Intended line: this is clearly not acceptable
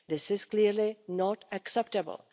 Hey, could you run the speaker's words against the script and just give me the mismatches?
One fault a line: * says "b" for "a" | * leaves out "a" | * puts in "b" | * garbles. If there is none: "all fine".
all fine